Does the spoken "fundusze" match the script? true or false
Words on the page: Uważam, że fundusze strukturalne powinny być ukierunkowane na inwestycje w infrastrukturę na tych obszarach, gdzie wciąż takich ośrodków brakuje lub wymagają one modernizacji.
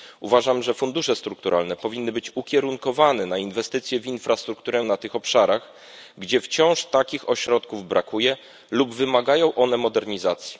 true